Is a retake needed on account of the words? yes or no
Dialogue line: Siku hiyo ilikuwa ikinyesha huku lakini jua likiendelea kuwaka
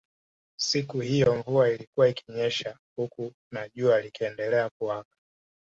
yes